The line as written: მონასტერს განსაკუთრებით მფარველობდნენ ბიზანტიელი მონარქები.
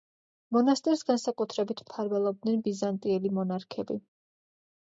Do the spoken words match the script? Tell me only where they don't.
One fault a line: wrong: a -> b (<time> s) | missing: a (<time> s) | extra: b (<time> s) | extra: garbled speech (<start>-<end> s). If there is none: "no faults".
no faults